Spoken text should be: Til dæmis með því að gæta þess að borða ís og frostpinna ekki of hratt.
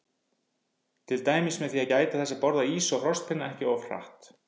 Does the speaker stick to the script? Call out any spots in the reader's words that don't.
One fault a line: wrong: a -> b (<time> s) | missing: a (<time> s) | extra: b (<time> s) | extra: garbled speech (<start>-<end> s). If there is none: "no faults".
no faults